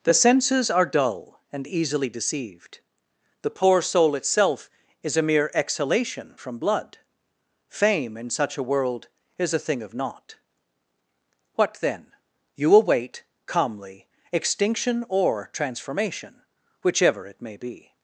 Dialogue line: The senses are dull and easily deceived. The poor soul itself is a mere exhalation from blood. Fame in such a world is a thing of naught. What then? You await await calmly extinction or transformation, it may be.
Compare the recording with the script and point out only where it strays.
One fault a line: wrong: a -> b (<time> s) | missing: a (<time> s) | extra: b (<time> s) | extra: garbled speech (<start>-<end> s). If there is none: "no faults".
missing: await (13.2 s)
extra: whichever (16.8 s)